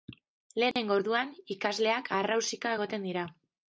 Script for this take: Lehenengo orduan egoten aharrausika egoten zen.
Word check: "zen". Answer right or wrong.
wrong